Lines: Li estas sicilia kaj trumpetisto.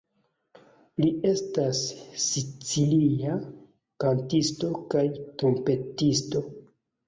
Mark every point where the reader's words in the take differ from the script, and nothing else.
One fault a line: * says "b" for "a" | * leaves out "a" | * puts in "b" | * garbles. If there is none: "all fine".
* puts in "kantisto"